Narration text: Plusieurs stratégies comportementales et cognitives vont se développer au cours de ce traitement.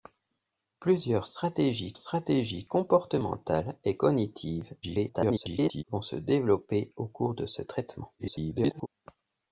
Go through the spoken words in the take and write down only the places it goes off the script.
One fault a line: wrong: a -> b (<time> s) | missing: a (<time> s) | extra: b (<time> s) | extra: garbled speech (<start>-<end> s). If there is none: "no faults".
extra: stratégies (2.0 s)
extra: garbled speech (4.8-5.8 s)
extra: garbled speech (8.2-8.9 s)